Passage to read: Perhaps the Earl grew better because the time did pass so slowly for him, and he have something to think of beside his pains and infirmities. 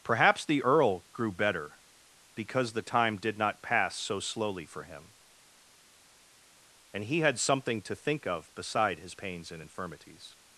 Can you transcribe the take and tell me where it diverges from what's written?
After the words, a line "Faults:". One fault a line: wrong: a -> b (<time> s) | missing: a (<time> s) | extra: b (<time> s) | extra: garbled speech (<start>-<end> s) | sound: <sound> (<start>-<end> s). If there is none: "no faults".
Perhaps the Earl grew better because the time did not pass so slowly for him, and he had something to think of beside his pains and infirmities.
Faults:
extra: not (3.4 s)
wrong: have -> had (7.2 s)